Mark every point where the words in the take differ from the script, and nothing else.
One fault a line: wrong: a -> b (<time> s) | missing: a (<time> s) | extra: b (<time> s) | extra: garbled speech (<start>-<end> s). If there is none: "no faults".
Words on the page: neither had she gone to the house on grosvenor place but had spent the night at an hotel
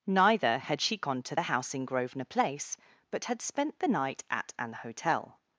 wrong: on -> in (1.7 s)